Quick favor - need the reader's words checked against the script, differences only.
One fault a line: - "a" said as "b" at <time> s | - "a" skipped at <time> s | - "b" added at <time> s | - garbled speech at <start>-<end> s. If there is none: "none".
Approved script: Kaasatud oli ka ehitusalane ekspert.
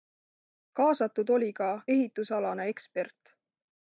none